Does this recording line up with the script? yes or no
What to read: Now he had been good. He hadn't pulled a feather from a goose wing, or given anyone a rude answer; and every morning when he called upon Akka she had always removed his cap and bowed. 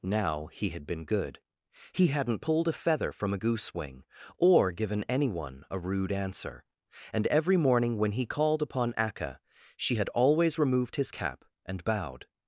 yes